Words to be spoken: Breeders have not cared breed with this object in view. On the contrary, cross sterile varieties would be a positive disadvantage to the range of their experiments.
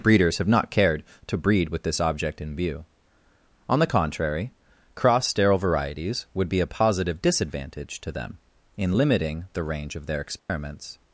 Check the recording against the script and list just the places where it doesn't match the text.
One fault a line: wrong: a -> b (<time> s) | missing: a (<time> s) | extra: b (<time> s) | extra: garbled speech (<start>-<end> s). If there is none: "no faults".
extra: to (1.3 s)
extra: them in limiting (8.1 s)